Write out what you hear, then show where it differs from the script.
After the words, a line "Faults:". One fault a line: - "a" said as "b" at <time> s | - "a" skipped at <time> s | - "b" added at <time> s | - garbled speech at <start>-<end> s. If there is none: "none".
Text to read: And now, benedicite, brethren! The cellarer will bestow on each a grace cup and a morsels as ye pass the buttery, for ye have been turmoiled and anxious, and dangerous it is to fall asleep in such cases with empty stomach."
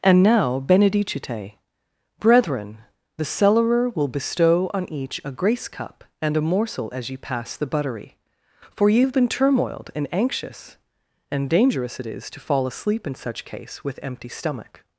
And now, benedicite, brethren! The cellarer will bestow on each a grace cup and a morsel as ye pass the buttery, for ye have been turmoiled and anxious, and dangerous it is to fall asleep in such case with empty stomach."
Faults:
- "morsels" said as "morsel" at 6.4 s
- "cases" said as "case" at 13.4 s